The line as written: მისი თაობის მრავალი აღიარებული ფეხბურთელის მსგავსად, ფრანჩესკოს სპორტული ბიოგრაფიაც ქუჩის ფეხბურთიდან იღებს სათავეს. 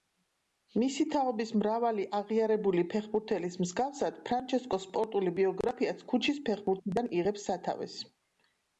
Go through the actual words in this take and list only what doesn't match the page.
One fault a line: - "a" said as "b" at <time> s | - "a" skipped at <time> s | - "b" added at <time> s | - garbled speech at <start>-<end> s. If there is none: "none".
none